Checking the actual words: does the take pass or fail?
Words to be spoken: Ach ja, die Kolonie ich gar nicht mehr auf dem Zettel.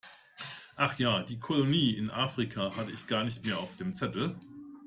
fail